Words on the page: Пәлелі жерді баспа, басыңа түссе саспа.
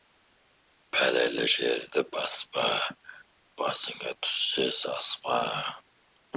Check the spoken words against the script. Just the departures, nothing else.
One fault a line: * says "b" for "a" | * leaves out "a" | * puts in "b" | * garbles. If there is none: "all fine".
all fine